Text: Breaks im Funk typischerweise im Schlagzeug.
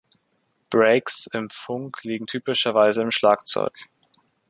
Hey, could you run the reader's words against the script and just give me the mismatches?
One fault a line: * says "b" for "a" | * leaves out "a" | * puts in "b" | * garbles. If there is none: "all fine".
* puts in "liegen"